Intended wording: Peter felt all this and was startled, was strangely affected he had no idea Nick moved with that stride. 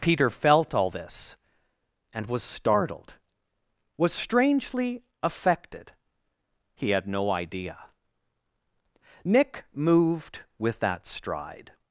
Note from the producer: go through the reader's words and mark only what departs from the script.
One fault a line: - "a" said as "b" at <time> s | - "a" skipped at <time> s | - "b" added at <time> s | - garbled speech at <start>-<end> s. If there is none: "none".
none